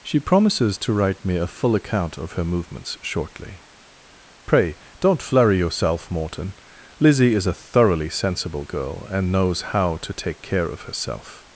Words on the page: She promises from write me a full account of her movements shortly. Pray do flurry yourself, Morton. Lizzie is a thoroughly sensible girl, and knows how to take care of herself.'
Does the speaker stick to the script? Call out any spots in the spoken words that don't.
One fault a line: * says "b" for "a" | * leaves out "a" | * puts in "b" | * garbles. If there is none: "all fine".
* says "to" for "from"
* says "don't" for "do"